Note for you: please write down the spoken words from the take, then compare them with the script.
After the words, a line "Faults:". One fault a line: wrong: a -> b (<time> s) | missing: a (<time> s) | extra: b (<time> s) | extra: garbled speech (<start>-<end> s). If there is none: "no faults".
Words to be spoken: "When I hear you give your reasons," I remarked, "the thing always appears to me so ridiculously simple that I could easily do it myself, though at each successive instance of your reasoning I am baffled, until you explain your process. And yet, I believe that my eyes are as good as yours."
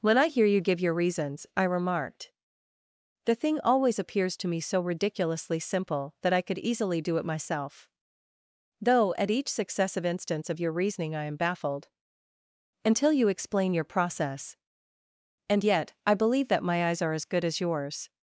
"When I hear you give your reasons," I remarked, "the thing always appears to me so ridiculously simple that I could easily do it myself, though at each successive instance of your reasoning I am baffled, until you explain your process. And yet, I believe that my eyes are as good as yours."
Faults:
no faults